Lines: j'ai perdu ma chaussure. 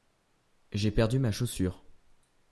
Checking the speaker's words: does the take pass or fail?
pass